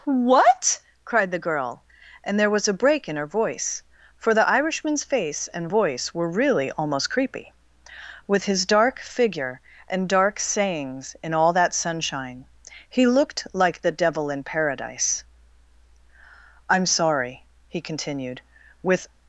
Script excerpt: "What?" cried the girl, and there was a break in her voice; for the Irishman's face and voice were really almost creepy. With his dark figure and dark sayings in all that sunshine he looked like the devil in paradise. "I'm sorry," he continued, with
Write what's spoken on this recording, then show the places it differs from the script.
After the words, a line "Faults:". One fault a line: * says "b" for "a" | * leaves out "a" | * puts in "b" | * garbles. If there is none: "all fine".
"What?" cried the girl, and there was a break in her voice; for the Irishman's face and voice were really almost creepy. With his dark figure and dark sayings in all that sunshine he looked like the devil in paradise. "I'm sorry," he continued, with
Faults:
all fine